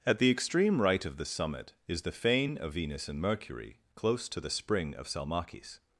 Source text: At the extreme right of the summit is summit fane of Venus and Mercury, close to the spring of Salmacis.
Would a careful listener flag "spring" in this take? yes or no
no